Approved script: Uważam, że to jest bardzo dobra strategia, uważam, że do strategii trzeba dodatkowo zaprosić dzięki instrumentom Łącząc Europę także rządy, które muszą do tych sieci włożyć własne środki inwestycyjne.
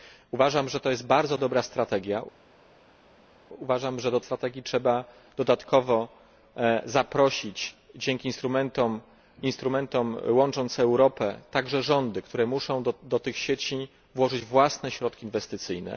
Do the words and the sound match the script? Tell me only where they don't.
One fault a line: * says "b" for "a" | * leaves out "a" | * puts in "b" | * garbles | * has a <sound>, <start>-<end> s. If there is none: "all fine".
all fine